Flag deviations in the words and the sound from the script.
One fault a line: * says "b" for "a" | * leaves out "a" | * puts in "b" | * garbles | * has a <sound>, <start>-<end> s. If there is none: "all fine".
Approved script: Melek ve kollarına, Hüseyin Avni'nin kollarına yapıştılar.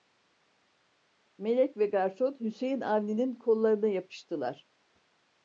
* says "garson" for "kollarına"